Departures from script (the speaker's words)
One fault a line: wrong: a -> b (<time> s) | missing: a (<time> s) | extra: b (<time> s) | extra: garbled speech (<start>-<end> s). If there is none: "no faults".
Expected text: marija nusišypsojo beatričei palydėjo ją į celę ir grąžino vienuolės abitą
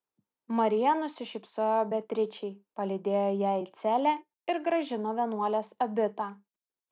no faults